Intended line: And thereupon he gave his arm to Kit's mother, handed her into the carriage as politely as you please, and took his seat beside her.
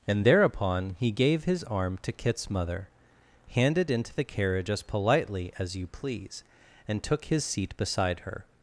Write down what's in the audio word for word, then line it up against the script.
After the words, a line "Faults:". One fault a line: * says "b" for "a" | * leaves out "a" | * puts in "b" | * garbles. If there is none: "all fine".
And thereupon he gave his arm to Kit's mother, handed into the carriage as politely as you please, and took his seat beside her.
Faults:
* leaves out "her"